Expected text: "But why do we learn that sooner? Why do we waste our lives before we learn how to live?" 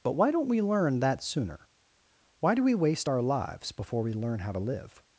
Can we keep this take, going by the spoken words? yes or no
no